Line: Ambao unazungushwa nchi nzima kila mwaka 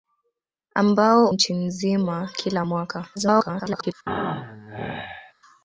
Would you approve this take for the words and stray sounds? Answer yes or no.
no